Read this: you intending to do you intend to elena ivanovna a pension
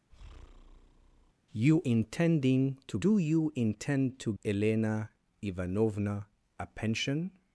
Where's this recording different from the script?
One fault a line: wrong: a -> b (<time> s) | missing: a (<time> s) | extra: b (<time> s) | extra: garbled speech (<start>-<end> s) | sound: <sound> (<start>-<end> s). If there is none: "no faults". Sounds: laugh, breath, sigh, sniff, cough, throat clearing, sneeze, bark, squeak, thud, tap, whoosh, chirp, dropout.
sound: breath (0.1-1.3 s)